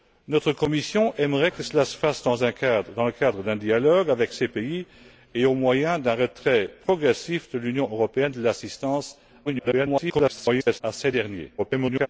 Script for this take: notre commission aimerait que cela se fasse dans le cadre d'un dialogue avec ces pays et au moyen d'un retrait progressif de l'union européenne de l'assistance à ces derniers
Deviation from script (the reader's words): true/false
true